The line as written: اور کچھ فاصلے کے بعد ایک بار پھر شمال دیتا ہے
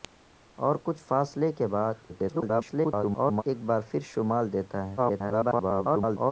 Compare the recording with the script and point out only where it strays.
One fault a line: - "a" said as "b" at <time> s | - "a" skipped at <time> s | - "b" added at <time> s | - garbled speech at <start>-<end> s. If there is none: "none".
- garbled speech at 2.1-3.4 s
- garbled speech at 5.0-6.3 s